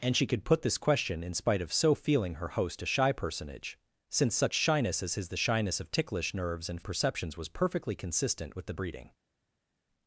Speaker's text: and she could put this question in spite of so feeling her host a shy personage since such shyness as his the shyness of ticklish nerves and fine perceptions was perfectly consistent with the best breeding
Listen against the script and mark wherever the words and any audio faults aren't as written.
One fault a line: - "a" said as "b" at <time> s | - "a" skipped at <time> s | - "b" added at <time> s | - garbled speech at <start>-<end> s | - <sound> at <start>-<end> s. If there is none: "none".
- "fine" skipped at 6.8 s
- "best" skipped at 8.7 s